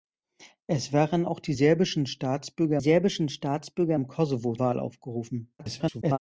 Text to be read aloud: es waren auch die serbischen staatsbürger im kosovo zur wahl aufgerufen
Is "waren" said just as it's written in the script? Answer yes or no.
yes